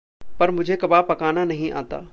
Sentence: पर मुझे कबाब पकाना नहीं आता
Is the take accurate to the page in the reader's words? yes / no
yes